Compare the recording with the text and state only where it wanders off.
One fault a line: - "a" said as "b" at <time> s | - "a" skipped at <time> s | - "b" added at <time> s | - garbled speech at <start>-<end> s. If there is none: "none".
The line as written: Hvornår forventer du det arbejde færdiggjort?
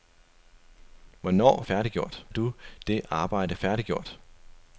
- "forventer" said as "færdiggjort" at 1.6 s